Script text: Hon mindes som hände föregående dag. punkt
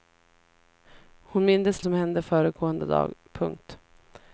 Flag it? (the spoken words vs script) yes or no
no